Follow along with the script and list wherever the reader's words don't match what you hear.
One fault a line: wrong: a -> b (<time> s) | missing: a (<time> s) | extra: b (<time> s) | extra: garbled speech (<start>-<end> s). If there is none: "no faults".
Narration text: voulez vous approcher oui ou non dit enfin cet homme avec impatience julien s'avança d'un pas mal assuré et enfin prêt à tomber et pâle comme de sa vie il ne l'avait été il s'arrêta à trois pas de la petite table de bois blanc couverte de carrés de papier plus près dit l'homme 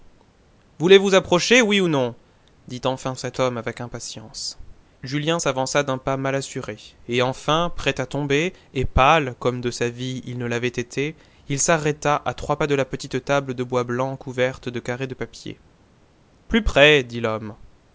no faults